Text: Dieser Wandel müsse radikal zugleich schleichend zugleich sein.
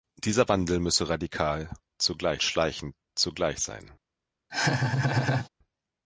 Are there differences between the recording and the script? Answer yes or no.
no